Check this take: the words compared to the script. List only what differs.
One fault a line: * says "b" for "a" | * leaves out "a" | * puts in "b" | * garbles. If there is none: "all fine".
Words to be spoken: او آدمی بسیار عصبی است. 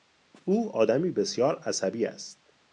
all fine